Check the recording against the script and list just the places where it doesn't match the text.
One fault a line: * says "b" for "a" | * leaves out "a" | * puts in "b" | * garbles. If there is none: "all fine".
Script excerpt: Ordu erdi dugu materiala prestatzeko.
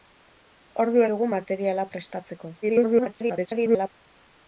* leaves out "erdi"
* garbles